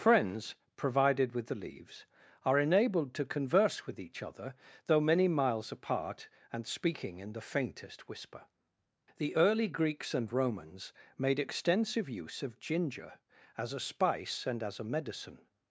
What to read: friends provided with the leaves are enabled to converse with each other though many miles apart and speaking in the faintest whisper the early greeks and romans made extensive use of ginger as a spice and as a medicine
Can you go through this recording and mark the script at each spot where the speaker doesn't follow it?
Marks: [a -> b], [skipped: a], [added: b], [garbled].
friends provided with the leaves are enabled to converse with each other though many miles apart and speaking in the faintest whisper the early greeks and romans made extensive use of ginger as a spice and as a medicine